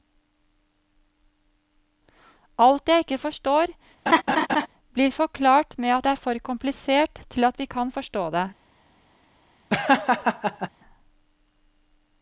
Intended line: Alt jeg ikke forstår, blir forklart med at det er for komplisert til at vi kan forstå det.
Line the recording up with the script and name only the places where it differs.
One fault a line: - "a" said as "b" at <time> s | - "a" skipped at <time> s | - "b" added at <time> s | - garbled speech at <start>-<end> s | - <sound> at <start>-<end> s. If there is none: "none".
- laugh at 4.1-4.7 s
- laugh at 9.7-10.7 s